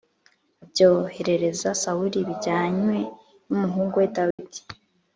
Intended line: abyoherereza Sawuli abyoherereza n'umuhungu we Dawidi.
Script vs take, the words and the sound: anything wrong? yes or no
yes